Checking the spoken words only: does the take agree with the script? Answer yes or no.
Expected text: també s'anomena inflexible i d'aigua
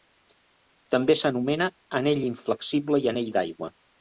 no